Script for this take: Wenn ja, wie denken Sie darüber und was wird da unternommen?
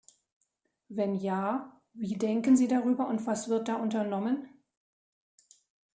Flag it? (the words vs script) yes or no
no